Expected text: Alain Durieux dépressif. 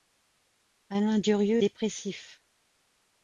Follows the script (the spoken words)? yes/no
yes